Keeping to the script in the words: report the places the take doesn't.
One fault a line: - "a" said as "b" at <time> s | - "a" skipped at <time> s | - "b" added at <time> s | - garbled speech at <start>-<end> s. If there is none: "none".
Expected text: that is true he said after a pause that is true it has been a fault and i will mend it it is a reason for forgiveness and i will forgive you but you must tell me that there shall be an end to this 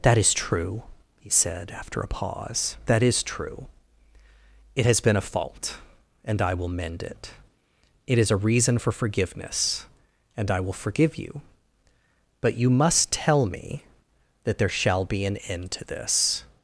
none